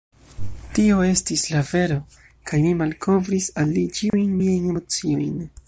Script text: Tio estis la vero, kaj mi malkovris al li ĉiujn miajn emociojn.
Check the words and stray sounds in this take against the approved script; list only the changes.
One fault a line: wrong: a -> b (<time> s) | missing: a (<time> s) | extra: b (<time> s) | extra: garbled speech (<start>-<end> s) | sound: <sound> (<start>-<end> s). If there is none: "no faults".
sound: dropout (4.1-4.1 s)